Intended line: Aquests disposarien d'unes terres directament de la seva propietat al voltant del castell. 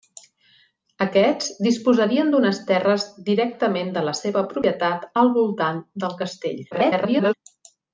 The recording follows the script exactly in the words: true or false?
false